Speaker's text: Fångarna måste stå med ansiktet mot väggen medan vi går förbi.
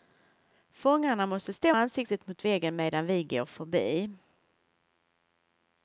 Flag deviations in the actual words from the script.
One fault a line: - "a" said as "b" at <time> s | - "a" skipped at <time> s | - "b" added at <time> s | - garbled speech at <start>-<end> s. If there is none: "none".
- "med" skipped at 1.8 s